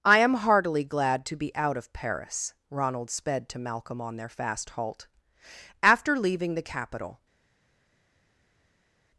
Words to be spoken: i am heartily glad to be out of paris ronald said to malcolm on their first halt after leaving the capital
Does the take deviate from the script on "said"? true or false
true